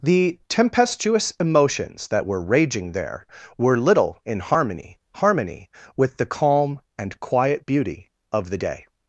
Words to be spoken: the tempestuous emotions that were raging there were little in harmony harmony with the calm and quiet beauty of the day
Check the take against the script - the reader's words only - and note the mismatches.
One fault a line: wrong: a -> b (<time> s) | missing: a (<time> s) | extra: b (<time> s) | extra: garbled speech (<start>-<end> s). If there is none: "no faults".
no faults